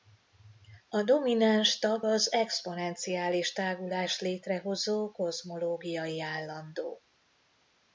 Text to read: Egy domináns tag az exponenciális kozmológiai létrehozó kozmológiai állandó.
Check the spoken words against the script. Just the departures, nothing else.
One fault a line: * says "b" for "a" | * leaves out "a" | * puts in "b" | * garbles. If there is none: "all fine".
* says "A" for "Egy"
* says "tágulást" for "kozmológiai"